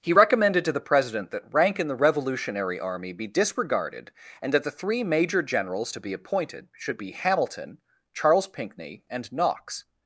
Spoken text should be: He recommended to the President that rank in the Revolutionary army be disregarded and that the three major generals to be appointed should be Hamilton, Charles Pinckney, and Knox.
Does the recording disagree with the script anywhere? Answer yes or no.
no